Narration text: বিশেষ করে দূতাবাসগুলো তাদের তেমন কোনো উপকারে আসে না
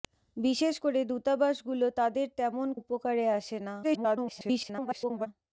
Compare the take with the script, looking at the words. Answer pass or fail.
fail